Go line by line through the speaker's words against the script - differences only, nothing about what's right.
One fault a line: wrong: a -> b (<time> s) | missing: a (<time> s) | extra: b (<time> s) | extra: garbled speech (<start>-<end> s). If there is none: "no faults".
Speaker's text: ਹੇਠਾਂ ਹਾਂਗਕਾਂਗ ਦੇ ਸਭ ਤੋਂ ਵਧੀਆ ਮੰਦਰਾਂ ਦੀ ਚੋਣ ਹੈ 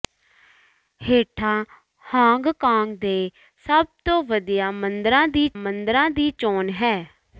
extra: ਮੰਦਰਾਂ ਦੀ (5.6 s)